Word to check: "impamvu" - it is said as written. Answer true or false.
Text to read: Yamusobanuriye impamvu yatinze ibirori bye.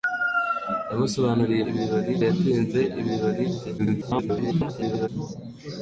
false